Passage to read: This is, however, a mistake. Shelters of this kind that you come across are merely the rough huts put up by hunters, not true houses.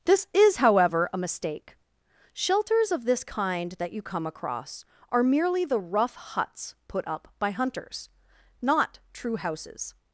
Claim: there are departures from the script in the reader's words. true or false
false